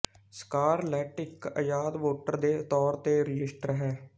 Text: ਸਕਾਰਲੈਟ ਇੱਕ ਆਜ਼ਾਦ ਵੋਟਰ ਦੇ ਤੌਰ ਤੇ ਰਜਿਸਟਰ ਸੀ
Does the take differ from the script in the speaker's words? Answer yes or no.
yes